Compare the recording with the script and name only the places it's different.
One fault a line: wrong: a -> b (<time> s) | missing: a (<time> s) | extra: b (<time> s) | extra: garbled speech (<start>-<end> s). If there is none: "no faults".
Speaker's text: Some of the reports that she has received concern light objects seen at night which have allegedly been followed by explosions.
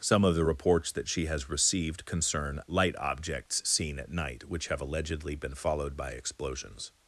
no faults